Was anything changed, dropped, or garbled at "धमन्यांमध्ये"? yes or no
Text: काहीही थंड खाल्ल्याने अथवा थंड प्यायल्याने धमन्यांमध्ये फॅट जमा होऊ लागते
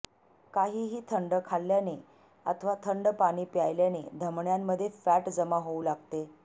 no